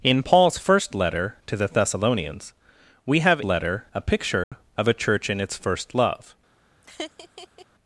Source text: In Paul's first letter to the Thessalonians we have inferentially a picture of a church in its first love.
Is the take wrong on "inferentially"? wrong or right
wrong